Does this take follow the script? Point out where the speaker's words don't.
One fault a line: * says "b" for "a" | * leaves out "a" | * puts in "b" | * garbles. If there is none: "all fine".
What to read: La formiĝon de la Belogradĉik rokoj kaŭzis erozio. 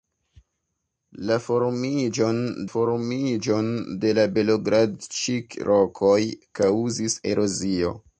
* puts in "formiĝon"